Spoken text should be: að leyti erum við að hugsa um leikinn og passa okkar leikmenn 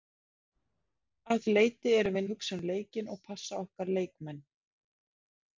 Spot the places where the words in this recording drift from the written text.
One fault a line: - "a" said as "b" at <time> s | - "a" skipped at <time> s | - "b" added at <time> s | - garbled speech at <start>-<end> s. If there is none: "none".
none